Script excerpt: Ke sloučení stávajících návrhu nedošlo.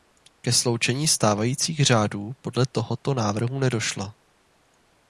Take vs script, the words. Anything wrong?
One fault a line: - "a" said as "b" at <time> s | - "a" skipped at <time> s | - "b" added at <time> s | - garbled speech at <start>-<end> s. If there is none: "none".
- "řádů podle tohoto" added at 1.9 s